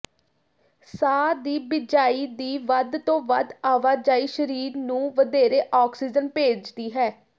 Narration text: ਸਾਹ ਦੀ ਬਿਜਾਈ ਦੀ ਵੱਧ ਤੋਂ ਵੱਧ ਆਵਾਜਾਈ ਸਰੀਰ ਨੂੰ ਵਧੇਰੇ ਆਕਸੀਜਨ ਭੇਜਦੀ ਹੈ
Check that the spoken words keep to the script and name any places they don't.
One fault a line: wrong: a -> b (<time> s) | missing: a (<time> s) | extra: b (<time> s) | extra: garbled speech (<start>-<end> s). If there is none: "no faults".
no faults